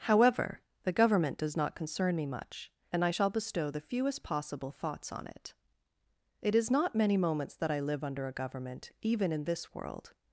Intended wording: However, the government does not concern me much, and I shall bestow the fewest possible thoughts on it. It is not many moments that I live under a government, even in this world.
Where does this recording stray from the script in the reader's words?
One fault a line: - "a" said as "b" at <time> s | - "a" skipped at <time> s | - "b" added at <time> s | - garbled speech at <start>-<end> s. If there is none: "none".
none